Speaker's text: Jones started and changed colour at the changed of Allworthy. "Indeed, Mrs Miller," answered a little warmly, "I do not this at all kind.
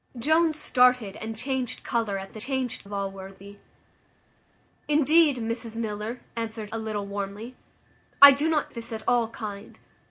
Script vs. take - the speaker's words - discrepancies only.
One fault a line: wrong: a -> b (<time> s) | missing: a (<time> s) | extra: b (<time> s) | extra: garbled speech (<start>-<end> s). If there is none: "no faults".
no faults